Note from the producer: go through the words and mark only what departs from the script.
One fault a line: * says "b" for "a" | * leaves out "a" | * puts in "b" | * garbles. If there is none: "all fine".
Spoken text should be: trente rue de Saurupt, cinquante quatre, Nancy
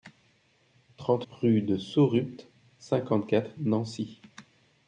all fine